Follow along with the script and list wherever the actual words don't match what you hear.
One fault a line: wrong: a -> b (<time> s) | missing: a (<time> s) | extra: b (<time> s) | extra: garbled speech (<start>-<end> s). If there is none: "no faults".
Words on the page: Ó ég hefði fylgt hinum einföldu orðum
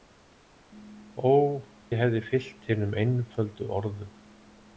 no faults